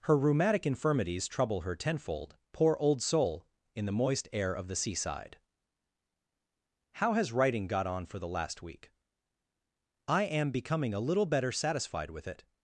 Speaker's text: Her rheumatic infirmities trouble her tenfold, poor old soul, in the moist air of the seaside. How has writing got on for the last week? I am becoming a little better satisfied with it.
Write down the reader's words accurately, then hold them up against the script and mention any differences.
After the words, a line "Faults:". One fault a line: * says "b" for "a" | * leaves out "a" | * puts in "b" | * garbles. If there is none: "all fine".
Her rheumatic infirmities trouble her tenfold, poor old soul, in the moist air of the seaside. How has writing got on for the last week? I am becoming a little better satisfied with it.
Faults:
all fine